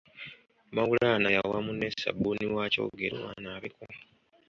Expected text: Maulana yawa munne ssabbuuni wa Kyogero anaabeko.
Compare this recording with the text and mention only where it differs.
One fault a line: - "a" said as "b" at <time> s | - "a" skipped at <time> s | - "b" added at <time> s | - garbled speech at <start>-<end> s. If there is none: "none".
none